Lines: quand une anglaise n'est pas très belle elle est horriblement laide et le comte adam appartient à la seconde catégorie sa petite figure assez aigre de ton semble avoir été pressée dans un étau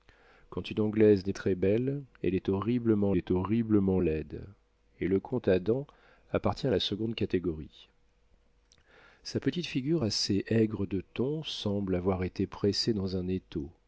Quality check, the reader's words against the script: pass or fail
fail